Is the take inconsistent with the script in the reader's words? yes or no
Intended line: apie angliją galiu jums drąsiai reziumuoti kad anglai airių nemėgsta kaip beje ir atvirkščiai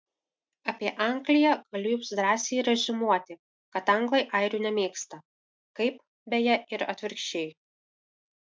no